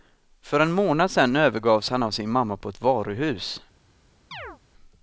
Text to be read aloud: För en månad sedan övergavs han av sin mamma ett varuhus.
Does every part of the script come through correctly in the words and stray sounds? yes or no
no